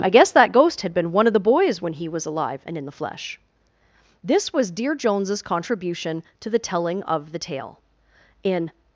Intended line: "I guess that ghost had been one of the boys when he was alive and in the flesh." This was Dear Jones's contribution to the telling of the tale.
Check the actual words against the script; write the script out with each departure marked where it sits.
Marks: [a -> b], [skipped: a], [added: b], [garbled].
"I guess that ghost had been one of the boys when he was alive and in the flesh." This was Dear Jones's contribution to the telling of the tale. [added: In]